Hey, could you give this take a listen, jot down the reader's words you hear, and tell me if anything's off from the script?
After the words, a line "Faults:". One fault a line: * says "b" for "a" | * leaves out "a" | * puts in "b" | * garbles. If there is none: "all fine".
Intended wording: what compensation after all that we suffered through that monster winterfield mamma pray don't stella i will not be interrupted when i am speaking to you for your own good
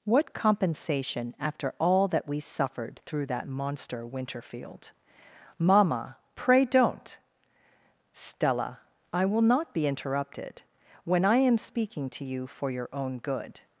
what compensation after all that we suffered through that monster winterfield mamma pray don't stella i will not be interrupted when i am speaking to you for your own good
Faults:
all fine